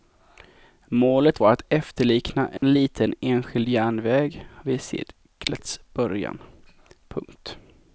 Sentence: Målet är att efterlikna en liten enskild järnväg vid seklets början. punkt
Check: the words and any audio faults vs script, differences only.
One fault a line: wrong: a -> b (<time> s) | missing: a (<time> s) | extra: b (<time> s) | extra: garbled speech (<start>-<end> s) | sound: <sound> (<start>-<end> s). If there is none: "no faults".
wrong: är -> var (1.4 s)
sound: dropout (2.6-2.6 s)